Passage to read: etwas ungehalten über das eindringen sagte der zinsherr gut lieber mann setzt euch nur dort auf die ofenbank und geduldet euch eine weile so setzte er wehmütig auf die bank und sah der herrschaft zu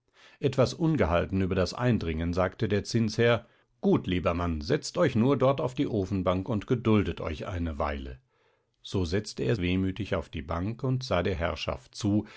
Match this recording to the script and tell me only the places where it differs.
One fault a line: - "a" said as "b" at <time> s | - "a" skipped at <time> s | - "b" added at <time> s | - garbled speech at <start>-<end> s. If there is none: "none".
none